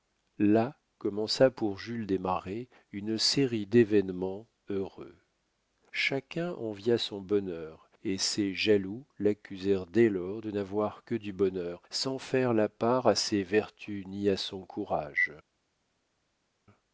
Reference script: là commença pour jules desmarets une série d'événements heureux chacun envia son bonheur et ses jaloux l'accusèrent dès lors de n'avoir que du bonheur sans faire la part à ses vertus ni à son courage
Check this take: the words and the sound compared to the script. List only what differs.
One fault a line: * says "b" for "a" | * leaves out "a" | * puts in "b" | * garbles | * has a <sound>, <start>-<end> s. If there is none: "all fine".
all fine